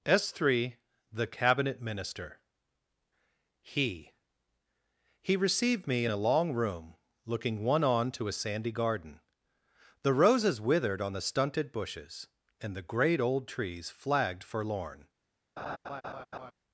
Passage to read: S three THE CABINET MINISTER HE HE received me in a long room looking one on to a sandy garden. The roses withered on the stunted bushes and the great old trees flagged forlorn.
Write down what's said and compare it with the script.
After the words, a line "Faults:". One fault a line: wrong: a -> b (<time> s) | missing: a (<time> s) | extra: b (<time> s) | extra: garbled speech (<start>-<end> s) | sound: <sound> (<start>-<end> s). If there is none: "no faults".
S three THE CABINET MINISTER HE HE received me in a long room looking one on to a sandy garden. The roses withered on the stunted bushes and the great old trees flagged forlorn.
Faults:
sound: laugh (15.6-16.5 s)